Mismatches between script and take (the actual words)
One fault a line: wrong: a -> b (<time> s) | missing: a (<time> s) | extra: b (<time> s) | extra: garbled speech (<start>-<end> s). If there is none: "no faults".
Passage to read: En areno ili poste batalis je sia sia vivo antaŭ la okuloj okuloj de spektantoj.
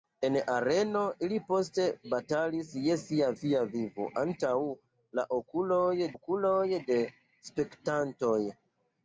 no faults